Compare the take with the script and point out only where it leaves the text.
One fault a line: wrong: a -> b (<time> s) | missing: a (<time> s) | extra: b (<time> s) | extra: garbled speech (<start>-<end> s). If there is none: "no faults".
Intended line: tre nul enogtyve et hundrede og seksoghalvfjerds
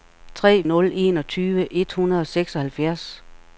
no faults